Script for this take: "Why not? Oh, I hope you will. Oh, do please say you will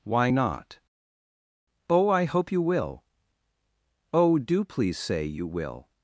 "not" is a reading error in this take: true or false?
false